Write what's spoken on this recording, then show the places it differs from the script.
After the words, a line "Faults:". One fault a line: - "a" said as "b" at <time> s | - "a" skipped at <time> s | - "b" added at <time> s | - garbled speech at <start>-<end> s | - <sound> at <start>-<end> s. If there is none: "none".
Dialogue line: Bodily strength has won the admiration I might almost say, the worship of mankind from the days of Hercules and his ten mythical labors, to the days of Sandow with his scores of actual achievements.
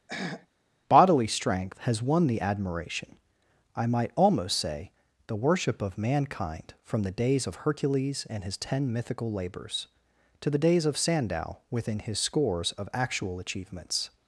Bodily strength has won the admiration I might almost say, the worship of mankind from the days of Hercules and his ten mythical labors, to the days of Sandow within his scores of actual achievements.
Faults:
- throat clearing at 0.1-0.5 s
- "with" said as "within" at 11.7 s